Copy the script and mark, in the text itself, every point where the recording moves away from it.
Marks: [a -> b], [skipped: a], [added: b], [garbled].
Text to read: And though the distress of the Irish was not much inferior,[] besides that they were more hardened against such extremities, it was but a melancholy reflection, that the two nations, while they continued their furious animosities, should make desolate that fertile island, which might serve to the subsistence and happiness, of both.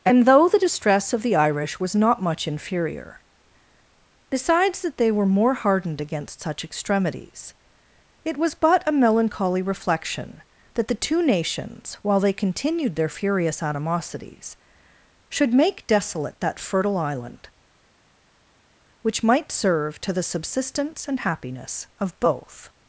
And though the distress of the Irish was not much inferior,[] besides that they were more hardened against such extremities, it was but a melancholy reflection, that the two nations, while they continued their furious animosities, should make desolate that fertile island, which might serve to the subsistence and happiness, of both.